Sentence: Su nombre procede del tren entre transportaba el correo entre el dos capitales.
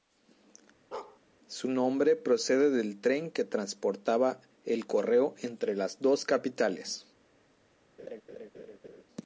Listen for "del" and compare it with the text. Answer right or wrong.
right